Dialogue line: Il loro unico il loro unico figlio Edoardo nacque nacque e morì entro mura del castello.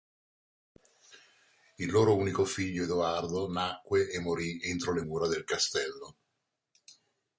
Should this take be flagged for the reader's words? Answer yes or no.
yes